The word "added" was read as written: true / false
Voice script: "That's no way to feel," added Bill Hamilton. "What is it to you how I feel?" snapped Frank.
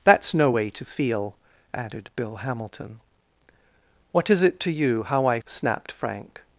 true